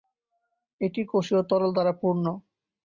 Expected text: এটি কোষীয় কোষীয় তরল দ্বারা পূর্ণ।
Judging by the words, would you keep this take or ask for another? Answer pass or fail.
fail